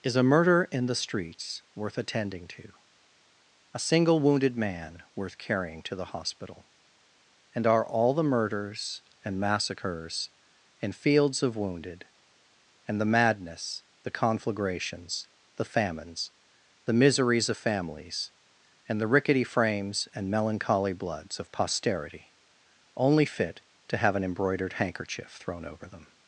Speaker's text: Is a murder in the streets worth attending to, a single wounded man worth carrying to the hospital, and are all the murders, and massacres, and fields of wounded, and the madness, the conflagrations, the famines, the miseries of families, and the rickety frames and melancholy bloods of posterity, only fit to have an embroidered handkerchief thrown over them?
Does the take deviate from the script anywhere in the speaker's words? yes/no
no